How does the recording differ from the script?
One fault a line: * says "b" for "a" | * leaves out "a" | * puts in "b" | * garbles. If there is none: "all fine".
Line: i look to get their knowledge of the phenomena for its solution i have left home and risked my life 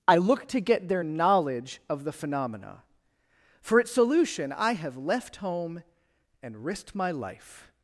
all fine